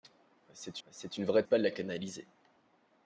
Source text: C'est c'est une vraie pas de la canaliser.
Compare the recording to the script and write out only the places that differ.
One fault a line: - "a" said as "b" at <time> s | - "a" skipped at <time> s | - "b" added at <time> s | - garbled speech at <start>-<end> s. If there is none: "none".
none